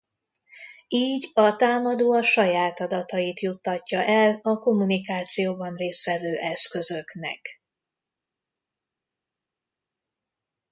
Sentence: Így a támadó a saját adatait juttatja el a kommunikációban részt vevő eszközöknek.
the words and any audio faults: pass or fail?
pass